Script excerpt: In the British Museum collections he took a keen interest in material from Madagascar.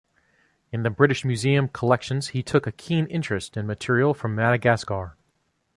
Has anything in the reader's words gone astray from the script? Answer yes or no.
no